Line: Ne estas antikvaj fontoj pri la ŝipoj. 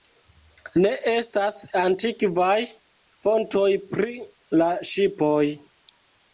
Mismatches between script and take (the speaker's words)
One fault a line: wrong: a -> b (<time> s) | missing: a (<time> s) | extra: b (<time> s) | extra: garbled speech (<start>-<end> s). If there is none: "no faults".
no faults